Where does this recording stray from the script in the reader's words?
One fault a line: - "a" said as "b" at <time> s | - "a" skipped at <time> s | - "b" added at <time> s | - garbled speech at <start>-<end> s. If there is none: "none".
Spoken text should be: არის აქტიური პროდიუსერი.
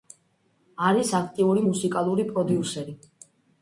- "მუსიკალური" added at 1.7 s